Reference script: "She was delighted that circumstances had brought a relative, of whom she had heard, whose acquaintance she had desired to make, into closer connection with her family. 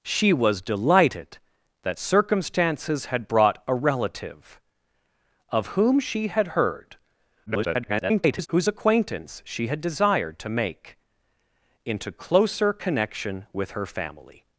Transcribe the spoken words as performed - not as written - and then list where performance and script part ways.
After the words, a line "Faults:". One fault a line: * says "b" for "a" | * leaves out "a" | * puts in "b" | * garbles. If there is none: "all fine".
"She was delighted that circumstances had brought a relative, of whom she had heard, [garbled] whose acquaintance she had desired to make, into closer connection with her family.
Faults:
* garbles